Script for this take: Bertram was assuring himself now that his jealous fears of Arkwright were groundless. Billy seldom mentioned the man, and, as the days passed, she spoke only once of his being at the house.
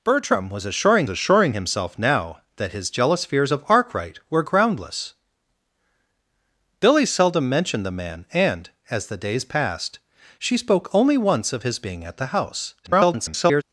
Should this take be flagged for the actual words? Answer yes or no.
yes